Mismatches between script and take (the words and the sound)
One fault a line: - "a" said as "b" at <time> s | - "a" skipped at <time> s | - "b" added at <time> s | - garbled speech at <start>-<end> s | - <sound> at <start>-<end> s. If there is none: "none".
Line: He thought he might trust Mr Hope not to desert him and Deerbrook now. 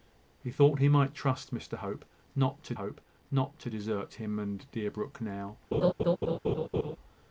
- "Hope not to" added at 2.7 s
- laugh at 5.7-7.0 s